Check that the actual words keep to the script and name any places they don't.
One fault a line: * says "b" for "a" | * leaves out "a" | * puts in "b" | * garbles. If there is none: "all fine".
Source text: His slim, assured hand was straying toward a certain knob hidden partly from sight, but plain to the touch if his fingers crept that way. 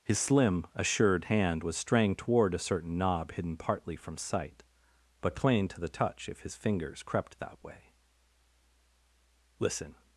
* puts in "Listen"